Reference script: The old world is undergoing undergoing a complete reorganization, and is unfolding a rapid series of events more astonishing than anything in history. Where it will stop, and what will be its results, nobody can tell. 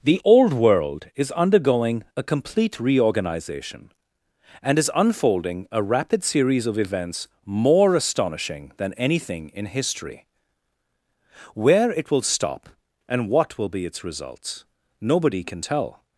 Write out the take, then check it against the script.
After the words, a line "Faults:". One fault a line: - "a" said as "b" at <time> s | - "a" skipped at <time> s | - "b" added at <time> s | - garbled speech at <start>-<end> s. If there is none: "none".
The old world is undergoing a complete reorganization, and is unfolding a rapid series of events more astonishing than anything in history. Where it will stop, and what will be its results, nobody can tell.
Faults:
- "undergoing" skipped at 2.0 s